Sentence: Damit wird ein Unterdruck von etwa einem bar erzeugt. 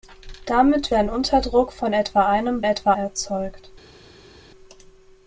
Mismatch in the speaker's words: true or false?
true